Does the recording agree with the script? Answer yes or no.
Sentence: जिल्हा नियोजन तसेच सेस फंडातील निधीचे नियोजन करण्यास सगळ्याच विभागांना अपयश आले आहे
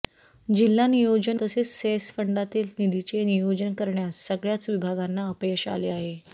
yes